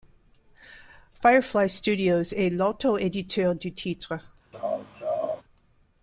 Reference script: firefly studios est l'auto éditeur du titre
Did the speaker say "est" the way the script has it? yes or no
yes